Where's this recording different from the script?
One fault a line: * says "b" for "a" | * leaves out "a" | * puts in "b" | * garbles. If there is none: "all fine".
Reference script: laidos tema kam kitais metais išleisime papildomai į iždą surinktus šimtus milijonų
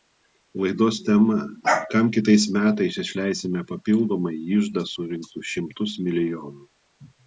all fine